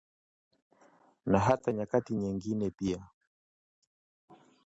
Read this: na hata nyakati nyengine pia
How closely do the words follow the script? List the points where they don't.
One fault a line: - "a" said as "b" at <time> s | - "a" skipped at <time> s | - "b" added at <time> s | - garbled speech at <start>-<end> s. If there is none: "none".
none